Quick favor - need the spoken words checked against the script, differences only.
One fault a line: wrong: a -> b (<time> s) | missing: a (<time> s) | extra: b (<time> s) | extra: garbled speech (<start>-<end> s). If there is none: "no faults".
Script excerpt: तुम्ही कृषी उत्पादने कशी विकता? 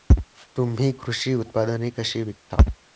no faults